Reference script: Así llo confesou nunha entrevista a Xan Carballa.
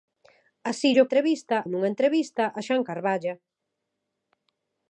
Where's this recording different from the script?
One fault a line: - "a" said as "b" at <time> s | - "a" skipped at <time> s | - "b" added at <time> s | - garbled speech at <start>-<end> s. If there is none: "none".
- "confesou" said as "entrevista" at 1.1 s